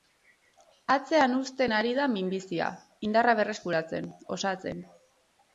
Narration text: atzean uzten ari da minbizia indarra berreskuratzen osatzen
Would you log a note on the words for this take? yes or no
no